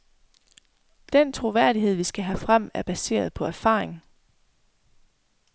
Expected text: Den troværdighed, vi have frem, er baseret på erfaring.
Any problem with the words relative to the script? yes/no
yes